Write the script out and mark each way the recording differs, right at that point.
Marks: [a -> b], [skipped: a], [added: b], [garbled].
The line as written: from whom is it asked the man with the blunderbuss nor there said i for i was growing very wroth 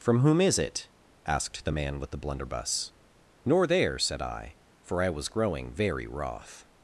from whom is it asked the man with the blunderbuss nor there said i for i was growing very wroth